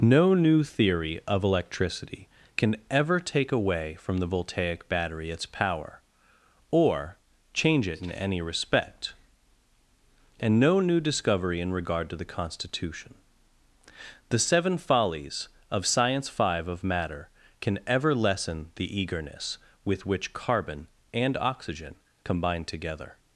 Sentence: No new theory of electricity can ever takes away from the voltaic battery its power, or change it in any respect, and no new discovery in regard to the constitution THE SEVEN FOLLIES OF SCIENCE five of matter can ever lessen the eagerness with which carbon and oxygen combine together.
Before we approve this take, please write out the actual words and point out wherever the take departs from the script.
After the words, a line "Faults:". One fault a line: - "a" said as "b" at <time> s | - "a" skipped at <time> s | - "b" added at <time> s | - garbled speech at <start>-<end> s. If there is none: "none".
No new theory of electricity can ever take away from the voltaic battery its power, or change it in any respect, and no new discovery in regard to the constitution THE SEVEN FOLLIES OF SCIENCE five of matter can ever lessen the eagerness with which carbon and oxygen combine together.
Faults:
- "takes" said as "take" at 3.2 s